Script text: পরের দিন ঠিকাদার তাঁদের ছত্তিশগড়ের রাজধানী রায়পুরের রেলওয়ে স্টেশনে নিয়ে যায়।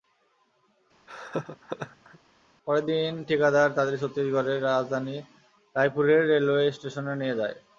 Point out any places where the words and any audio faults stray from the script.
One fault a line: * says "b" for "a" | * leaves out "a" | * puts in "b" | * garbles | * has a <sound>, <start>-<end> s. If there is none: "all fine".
* has a laugh, 1.1-2.2 s